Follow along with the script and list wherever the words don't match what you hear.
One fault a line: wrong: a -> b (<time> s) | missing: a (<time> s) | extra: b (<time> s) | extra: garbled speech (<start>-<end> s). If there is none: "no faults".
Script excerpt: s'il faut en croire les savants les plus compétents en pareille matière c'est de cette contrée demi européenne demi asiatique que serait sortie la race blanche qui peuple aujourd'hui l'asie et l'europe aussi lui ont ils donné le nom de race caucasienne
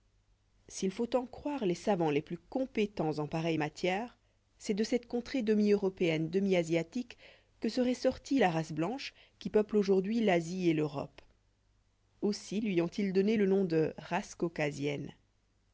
no faults